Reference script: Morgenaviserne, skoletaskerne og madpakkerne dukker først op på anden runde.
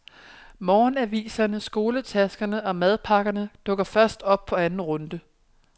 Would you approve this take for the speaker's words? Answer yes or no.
yes